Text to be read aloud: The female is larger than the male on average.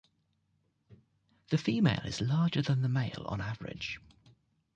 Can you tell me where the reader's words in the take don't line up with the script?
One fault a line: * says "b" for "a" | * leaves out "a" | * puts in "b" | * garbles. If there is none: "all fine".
all fine